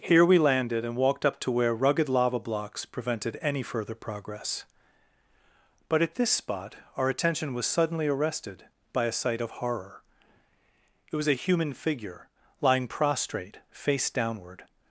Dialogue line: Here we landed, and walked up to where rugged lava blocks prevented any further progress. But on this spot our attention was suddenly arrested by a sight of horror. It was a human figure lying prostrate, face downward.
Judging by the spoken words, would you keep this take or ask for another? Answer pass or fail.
fail